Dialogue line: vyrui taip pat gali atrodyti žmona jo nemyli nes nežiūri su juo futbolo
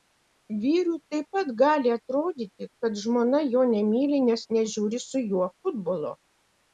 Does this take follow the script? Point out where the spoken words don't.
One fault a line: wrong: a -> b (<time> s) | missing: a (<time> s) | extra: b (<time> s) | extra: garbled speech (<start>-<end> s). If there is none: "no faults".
extra: kad (2.9 s)